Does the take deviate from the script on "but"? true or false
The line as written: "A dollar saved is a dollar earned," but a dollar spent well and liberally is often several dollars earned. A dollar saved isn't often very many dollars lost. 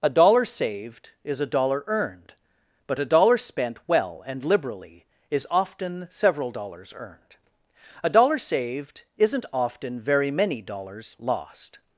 false